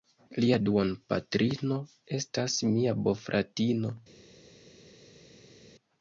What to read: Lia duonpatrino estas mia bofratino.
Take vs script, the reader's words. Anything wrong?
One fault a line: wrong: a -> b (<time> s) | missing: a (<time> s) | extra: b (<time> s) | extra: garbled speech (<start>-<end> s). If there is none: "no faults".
no faults